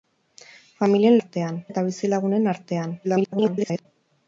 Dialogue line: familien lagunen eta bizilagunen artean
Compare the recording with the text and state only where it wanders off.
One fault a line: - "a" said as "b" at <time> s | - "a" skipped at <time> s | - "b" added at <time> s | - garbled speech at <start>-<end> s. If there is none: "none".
- "lagunen" said as "artean" at 1.2 s
- garbled speech at 3.0-3.9 s